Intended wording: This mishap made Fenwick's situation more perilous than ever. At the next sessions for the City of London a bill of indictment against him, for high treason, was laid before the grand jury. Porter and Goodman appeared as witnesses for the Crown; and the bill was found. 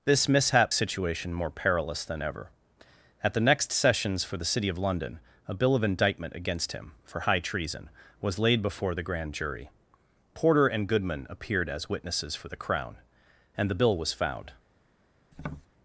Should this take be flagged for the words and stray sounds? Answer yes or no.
yes